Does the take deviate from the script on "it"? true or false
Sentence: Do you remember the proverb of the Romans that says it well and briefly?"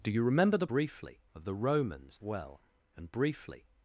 true